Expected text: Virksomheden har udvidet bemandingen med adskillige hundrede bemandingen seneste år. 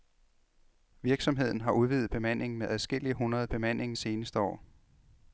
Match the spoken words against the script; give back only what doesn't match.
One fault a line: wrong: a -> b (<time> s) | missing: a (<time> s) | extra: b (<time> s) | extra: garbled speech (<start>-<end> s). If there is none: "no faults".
no faults